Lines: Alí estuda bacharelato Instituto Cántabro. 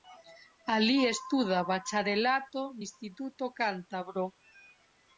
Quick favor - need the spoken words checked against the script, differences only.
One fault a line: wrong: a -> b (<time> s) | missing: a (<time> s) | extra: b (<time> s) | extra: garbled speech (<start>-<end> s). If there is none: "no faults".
no faults